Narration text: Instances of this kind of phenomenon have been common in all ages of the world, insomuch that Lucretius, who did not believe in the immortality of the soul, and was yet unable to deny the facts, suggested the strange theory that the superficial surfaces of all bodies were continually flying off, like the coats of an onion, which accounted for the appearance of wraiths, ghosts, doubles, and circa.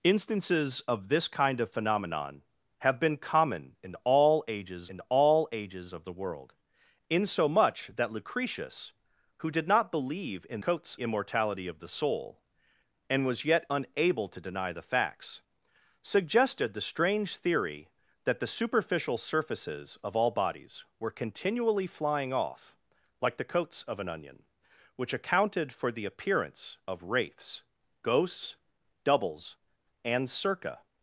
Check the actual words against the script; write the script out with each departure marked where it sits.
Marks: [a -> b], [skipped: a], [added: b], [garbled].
Instances of this kind of phenomenon have been common in all ages [added: in all ages] of the world, insomuch that Lucretius, who did not believe in [the -> coats] immortality of the soul, and was yet unable to deny the facts, suggested the strange theory that the superficial surfaces of all bodies were continually flying off, like the coats of an onion, which accounted for the appearance of wraiths, ghosts, doubles, and circa.